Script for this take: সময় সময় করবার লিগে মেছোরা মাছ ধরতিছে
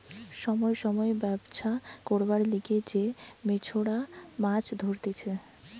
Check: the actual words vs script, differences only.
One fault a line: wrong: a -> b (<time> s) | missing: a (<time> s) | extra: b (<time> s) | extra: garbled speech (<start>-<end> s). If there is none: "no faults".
extra: ব্যবছা (1.2 s)
extra: যে (2.9 s)